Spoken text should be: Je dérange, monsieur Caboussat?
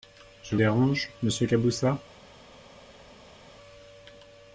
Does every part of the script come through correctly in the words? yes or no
yes